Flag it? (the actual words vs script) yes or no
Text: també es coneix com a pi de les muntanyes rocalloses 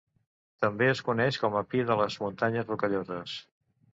no